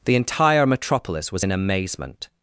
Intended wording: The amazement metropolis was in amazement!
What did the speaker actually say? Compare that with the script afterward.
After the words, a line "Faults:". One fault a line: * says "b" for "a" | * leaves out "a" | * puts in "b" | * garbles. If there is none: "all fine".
The entire metropolis was in amazement!
Faults:
* says "entire" for "amazement"